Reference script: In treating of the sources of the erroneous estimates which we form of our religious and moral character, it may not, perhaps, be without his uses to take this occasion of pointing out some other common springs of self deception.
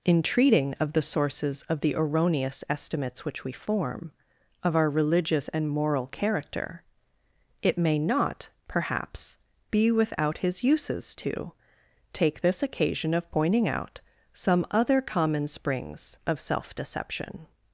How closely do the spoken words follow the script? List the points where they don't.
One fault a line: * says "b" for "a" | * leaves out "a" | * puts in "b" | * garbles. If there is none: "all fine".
all fine